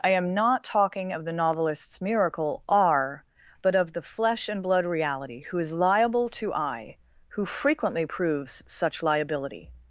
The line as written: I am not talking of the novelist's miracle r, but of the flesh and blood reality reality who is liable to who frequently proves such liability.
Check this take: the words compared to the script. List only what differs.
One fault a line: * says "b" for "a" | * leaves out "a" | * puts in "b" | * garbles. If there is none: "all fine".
* leaves out "reality"
* puts in "I"